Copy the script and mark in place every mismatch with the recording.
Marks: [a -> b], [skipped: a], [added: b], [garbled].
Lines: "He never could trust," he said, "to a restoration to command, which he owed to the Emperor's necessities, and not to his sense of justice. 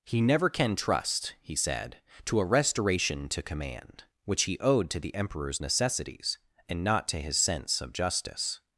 "He never [could -> can] trust," he said, "to a restoration to command, which he owed to the Emperor's necessities, and not to his sense of justice.